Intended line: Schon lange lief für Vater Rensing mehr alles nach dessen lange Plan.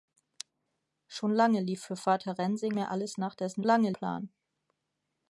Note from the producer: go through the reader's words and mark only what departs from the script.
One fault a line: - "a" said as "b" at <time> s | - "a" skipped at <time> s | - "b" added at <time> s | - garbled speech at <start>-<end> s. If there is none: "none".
none